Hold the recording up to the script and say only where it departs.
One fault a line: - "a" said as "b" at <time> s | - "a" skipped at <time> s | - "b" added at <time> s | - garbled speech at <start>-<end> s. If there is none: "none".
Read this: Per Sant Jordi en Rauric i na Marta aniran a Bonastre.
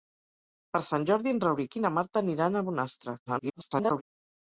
- garbled speech at 3.3-4.0 s